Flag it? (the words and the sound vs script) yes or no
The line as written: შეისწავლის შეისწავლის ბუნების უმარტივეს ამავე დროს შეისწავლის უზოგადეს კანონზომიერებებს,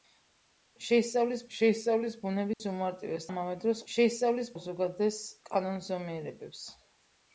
yes